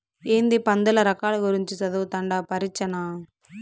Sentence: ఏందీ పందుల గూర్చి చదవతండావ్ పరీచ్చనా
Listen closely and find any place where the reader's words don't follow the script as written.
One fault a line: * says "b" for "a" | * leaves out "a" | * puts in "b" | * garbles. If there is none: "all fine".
* puts in "రకాల"